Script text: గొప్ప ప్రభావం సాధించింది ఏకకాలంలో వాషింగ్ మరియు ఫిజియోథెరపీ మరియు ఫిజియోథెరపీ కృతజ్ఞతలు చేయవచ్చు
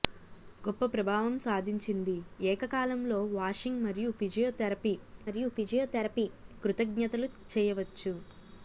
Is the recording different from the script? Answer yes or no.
no